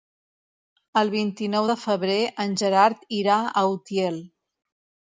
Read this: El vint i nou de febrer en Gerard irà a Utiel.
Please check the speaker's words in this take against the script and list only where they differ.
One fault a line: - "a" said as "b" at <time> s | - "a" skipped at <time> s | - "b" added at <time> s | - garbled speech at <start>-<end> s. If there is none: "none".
none